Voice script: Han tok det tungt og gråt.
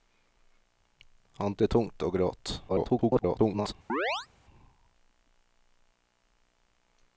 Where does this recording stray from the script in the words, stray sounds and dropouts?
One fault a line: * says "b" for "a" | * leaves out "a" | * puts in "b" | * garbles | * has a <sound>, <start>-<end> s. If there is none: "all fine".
* leaves out "tok"
* garbles
* has a chirp, 3.9-4.3 s